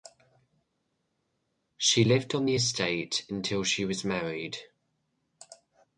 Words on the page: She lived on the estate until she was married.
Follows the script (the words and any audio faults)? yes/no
yes